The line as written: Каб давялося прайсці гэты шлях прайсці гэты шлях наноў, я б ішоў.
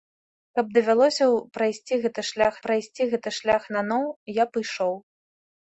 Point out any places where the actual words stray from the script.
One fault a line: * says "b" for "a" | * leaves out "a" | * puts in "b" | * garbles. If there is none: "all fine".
all fine